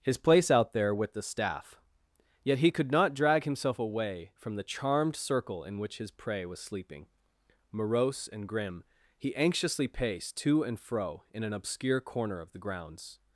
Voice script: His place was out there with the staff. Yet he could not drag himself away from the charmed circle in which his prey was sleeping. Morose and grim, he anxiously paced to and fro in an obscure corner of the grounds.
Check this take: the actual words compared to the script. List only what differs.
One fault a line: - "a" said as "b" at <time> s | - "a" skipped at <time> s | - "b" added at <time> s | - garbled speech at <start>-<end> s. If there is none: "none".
- "was" skipped at 0.5 s